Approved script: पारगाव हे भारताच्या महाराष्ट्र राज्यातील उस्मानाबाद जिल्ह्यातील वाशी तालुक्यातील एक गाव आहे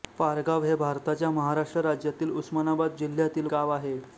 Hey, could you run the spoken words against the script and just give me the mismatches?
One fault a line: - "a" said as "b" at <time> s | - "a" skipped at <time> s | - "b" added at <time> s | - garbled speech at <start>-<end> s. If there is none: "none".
- "वाशी तालुक्यातील एक" skipped at 3.5 s